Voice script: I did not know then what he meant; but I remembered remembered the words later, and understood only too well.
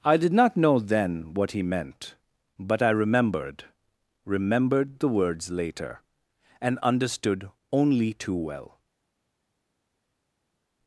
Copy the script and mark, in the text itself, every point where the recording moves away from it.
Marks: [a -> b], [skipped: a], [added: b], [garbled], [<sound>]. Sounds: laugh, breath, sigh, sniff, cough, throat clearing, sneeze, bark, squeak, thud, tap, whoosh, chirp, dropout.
I did not know then what he meant; but I remembered remembered the words later, and understood only too well.